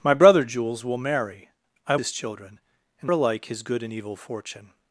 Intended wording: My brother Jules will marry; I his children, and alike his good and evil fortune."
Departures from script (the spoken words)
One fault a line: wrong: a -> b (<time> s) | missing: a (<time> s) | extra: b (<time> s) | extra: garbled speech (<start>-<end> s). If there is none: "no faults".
no faults